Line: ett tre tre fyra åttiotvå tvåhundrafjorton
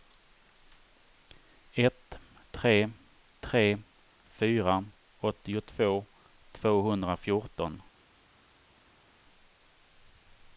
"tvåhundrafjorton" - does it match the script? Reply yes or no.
yes